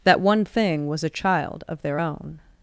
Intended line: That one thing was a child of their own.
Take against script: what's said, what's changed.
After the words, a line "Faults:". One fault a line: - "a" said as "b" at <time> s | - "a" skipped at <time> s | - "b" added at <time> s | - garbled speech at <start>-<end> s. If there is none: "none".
That one thing was a child of their own.
Faults:
none